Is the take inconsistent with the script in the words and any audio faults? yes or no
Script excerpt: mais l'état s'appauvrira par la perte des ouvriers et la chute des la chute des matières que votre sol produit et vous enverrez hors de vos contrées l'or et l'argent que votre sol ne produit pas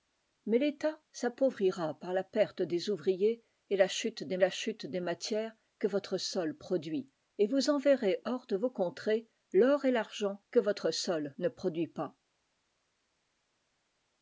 no